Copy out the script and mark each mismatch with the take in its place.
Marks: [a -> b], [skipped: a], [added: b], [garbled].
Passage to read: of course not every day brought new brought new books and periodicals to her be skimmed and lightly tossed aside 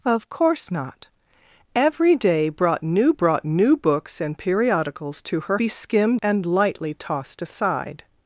of course not every day brought new brought new books and periodicals to her be skimmed and lightly tossed aside